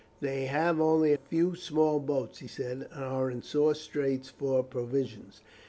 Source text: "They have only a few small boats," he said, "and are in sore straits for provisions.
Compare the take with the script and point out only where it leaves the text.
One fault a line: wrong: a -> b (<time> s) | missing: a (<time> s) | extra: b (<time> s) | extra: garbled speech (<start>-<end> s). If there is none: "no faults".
missing: a (1.1 s)